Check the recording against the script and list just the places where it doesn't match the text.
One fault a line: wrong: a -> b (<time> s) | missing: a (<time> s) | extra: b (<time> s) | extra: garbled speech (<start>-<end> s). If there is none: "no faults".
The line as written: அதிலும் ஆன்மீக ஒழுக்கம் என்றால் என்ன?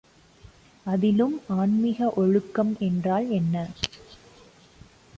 no faults